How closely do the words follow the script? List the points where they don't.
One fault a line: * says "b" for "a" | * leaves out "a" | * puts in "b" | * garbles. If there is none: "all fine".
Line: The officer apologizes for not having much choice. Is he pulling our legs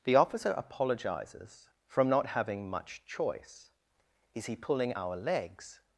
* says "from" for "for"